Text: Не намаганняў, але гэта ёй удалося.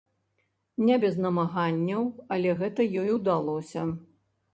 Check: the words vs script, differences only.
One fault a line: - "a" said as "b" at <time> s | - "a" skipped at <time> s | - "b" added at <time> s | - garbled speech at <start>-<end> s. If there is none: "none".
- "без" added at 1.0 s